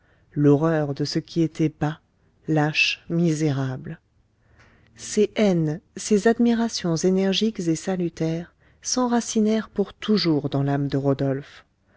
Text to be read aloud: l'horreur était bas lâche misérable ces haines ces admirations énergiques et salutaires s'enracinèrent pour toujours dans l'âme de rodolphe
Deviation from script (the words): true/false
true